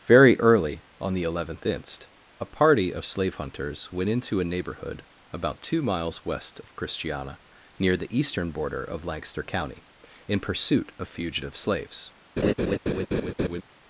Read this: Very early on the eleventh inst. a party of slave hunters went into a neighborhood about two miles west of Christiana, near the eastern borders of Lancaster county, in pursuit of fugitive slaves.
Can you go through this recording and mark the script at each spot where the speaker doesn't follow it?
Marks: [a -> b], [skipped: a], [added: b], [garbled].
Very early on the eleventh inst. a party of slave hunters went into a neighborhood about two miles west of Christiana, near the eastern [borders -> border] of Lancaster county, in pursuit of fugitive slaves.